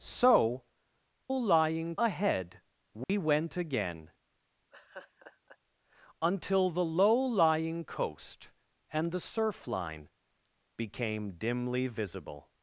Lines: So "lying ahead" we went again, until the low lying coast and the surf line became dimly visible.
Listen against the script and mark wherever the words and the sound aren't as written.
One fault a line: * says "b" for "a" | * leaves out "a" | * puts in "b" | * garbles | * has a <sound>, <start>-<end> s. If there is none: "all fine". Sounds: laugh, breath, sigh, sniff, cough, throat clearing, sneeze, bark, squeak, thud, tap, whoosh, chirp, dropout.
* has a dropout, 3.0-3.1 s
* has a laugh, 4.7-5.6 s